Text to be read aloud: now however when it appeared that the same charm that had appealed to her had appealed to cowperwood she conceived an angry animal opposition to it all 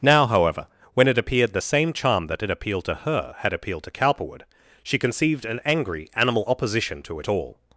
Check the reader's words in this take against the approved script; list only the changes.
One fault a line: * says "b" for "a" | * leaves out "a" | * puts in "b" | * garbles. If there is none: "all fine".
* leaves out "that"